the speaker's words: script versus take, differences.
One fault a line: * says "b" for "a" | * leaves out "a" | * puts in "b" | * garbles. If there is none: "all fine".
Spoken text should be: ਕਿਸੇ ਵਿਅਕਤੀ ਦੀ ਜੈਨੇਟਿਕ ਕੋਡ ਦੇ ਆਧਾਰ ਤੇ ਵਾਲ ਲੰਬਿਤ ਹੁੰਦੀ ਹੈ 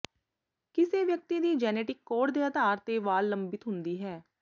all fine